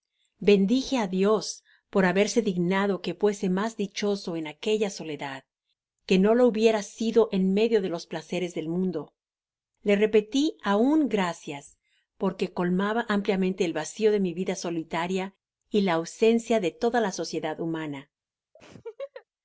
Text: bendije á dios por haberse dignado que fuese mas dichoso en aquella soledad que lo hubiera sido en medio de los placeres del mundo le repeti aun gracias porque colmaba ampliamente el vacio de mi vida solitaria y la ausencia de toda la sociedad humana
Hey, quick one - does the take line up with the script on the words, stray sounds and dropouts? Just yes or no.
no